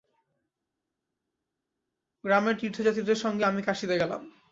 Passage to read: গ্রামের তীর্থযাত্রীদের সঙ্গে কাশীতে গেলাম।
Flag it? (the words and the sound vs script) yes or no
yes